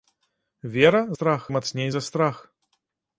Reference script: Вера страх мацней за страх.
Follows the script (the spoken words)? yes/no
yes